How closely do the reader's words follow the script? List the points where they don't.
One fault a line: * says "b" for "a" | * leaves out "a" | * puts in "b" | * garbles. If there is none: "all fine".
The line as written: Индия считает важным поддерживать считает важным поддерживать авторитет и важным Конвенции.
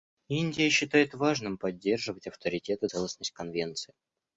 * leaves out "считает важным поддерживать"
* says "целостность" for "важным"